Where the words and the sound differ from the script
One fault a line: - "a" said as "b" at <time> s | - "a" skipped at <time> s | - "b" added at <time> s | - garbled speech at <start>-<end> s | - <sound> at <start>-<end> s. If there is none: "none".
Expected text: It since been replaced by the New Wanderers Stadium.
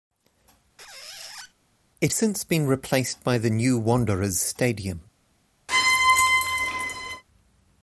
- squeak at 0.8-1.5 s
- squeak at 5.7-7.2 s